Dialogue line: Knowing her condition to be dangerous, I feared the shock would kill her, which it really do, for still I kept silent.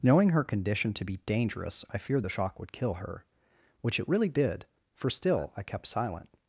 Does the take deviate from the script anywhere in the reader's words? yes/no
yes